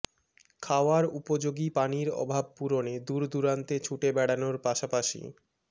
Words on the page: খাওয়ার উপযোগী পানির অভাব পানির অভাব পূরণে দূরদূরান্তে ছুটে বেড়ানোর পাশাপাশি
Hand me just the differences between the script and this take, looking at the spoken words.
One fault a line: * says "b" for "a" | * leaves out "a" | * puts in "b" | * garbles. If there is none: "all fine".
* leaves out "পানির অভাব"